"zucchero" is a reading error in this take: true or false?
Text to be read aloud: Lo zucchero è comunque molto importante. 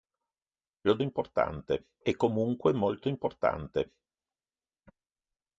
true